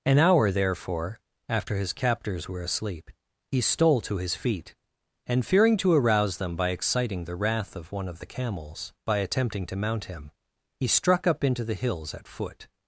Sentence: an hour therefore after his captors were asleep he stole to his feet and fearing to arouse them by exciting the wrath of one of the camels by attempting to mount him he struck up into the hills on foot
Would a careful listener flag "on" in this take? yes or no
yes